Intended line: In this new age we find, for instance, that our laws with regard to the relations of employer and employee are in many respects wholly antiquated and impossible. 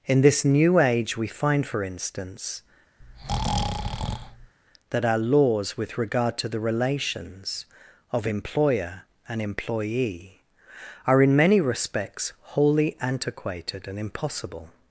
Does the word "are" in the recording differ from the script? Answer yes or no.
no